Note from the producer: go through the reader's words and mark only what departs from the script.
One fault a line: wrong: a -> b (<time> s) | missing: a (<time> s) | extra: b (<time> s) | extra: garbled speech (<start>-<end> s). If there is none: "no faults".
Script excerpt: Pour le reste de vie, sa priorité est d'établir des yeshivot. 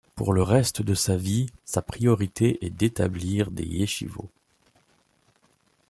extra: sa (0.9 s)